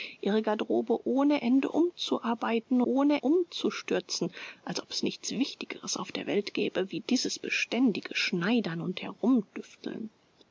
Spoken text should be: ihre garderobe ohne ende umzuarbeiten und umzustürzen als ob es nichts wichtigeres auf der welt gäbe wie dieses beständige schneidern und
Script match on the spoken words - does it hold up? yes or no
no